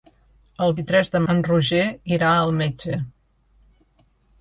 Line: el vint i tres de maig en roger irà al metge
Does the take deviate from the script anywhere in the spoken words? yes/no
yes